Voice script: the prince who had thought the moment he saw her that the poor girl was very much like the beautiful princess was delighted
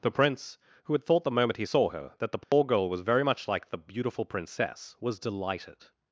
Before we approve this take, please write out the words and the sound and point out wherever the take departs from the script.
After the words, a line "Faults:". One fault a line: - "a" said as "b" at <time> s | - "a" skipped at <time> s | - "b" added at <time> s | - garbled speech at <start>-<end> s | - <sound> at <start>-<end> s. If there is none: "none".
the prince who had thought the moment he saw her that the poor girl was very much like the beautiful princess was delighted
Faults:
- dropout at 2.4-2.5 s